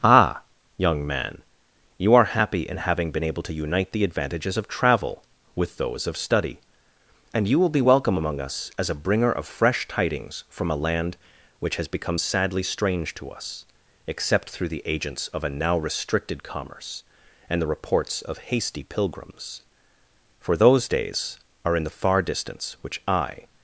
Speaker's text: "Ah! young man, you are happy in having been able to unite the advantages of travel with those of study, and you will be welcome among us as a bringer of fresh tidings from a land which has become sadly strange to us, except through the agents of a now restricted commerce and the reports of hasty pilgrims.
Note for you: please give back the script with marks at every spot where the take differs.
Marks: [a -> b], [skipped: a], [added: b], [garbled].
"Ah! young man, you are happy in having been able to unite the advantages of travel with those of study, and you will be welcome among us as a bringer of fresh tidings from a land which has become sadly strange to us, except through the agents of a now restricted commerce and the reports of hasty pilgrims. [added: For those days are in the far distance which I]